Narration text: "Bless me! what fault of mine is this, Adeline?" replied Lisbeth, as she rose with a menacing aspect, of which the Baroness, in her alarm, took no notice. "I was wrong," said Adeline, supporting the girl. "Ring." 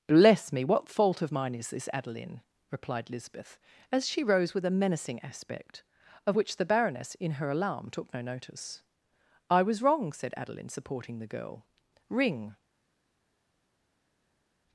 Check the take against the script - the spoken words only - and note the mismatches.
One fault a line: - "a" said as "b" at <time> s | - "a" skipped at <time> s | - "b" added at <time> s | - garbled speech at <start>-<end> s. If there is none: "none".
none